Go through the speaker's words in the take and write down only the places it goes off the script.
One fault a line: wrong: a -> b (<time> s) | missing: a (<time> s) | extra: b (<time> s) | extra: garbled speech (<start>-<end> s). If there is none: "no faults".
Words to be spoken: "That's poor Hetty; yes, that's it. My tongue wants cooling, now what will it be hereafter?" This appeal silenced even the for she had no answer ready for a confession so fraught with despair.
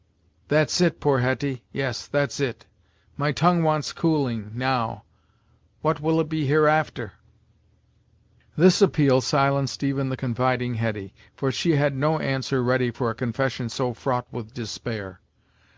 extra: it (0.8 s)
extra: confiding Hetty (10.1 s)